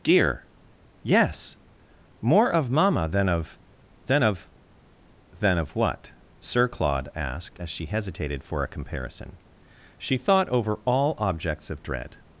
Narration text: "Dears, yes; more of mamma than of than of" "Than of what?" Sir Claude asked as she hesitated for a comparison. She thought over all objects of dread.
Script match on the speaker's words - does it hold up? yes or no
no